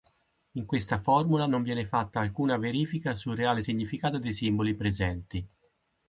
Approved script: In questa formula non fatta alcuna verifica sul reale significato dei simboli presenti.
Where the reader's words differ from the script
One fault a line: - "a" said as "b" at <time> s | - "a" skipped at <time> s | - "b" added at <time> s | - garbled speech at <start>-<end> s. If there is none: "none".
- "viene" added at 1.6 s